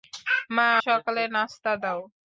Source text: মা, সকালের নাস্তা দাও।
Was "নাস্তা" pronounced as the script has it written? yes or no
yes